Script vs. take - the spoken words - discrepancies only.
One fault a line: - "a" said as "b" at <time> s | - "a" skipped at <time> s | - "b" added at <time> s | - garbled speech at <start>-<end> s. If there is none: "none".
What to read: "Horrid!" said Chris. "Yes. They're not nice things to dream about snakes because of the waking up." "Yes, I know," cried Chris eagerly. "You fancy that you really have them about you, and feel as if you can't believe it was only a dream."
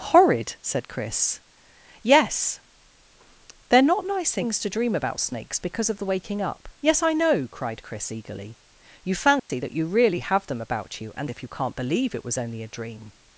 - "feel as" skipped at 11.3 s